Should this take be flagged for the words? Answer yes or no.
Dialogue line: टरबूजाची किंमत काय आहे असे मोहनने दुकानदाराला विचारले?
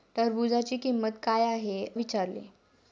yes